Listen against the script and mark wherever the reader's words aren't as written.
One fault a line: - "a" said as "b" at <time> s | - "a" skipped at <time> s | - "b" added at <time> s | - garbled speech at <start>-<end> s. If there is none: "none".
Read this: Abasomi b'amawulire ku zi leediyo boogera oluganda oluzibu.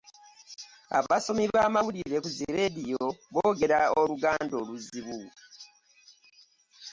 none